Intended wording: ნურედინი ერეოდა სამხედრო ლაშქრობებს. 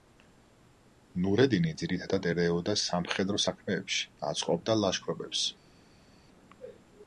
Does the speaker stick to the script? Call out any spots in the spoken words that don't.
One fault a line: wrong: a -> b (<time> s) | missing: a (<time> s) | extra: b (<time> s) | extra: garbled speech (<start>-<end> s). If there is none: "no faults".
extra: ძირითადად (1.8 s)
extra: საქმეებში აწყობდა (3.5 s)